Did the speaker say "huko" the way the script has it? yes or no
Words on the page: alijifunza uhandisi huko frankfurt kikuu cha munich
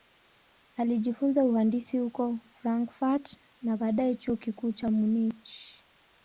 yes